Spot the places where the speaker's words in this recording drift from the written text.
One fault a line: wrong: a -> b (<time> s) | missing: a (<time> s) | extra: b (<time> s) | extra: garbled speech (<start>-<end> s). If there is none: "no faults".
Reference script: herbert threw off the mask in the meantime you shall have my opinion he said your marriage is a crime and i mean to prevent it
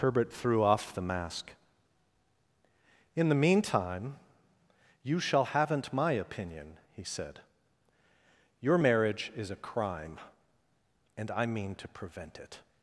wrong: have -> haven't (5.5 s)